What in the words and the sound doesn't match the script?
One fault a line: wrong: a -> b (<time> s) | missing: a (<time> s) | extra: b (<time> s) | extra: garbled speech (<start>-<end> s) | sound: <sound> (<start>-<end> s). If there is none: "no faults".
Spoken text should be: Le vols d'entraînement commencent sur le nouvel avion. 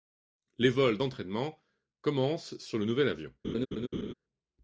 wrong: Le -> Les (0.6 s)
sound: laugh (3.4-4.1 s)